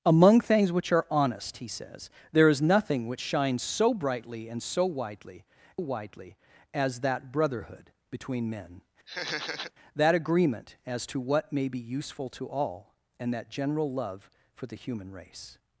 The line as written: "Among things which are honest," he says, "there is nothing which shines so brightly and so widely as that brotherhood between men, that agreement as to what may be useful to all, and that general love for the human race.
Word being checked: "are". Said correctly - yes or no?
yes